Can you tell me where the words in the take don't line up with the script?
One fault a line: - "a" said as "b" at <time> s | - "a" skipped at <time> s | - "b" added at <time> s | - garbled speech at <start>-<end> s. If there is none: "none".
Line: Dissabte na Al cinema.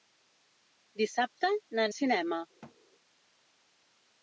none